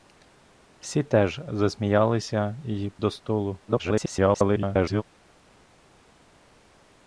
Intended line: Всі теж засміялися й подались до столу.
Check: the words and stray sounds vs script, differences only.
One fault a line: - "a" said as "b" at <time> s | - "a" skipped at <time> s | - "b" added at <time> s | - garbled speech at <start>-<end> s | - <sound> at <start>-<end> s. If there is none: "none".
- "подались" skipped at 2.9 s
- garbled speech at 3.7-5.0 s